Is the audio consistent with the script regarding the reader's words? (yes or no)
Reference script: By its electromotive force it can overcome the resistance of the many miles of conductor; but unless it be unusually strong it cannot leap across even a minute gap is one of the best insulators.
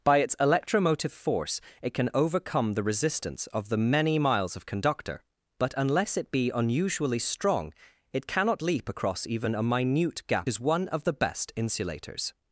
yes